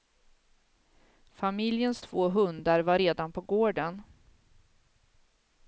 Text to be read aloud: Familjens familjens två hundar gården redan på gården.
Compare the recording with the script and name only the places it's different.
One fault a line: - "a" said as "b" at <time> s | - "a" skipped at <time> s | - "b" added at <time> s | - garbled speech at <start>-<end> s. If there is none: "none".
- "familjens" skipped at 2.0 s
- "gården" said as "var" at 2.8 s